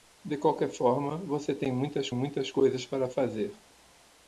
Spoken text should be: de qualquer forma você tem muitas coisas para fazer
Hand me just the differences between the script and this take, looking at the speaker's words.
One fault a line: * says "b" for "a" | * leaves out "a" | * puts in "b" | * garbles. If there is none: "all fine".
* puts in "muitas"